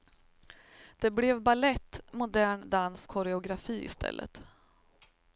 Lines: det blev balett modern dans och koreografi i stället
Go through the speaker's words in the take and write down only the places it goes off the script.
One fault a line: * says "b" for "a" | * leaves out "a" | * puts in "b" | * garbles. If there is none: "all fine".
* leaves out "och"